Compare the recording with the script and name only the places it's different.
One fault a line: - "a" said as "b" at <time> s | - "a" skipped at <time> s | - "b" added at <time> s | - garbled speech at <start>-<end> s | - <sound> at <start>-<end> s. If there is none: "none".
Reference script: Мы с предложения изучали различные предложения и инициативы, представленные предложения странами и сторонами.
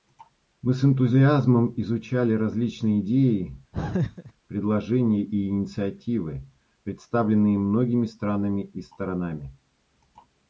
- "предложения" said as "энтузиазмом" at 0.8 s
- "идеи" added at 3.0 s
- laugh at 3.7-4.3 s
- "предложения" said as "многими" at 7.6 s